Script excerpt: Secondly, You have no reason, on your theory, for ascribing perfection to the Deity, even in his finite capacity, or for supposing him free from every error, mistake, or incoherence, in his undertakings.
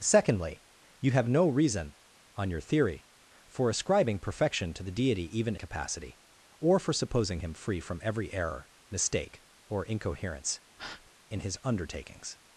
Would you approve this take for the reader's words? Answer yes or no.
no